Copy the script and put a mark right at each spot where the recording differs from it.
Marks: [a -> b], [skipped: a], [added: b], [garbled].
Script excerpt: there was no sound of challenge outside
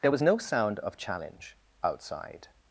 there was no sound of challenge outside